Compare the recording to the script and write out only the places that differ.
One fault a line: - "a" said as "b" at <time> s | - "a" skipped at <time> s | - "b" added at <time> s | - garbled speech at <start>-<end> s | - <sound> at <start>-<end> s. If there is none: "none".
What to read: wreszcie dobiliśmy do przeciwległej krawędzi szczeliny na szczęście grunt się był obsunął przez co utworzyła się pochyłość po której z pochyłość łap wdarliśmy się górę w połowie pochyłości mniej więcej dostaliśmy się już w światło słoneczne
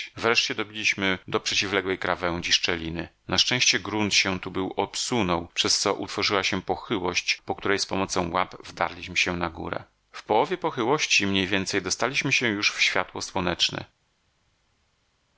- "tu" added at 4.4 s
- "pochyłość" said as "pomocą" at 7.8 s
- "na" added at 9.4 s